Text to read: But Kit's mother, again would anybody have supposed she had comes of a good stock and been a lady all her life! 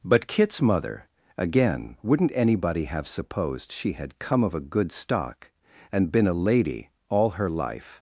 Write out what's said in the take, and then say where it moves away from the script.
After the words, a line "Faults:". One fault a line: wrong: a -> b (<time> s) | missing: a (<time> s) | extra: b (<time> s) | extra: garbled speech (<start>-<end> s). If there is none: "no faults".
But Kit's mother, again wouldn't anybody have supposed she had come of a good stock and been a lady all her life!
Faults:
wrong: would -> wouldn't (2.0 s)
wrong: comes -> come (4.2 s)